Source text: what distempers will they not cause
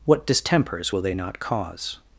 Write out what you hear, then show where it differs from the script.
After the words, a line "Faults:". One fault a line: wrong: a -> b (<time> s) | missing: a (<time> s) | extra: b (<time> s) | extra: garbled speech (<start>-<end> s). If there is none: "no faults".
what distempers will they not cause
Faults:
no faults